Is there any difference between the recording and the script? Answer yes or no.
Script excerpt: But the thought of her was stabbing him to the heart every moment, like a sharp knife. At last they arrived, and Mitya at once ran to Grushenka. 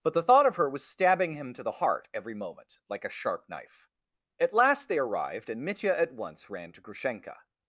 no